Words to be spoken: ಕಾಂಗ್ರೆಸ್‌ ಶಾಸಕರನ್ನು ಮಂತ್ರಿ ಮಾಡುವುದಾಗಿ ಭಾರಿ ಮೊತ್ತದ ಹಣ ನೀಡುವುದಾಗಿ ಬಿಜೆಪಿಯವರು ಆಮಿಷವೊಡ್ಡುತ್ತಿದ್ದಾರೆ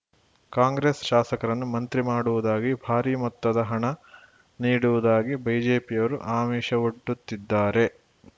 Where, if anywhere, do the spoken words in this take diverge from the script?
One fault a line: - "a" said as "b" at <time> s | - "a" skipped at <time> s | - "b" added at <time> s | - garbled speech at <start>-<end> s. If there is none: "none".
none